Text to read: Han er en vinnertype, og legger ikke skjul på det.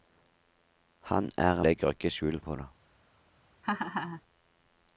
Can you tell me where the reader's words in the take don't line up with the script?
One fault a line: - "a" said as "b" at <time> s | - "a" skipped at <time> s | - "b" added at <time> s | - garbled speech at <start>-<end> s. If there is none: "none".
- "en vinnertype og" skipped at 1.6 s